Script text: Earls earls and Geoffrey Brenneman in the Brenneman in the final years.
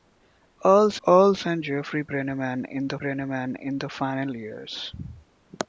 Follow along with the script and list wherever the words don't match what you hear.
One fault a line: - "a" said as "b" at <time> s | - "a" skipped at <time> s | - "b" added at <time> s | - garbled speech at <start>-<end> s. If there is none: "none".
none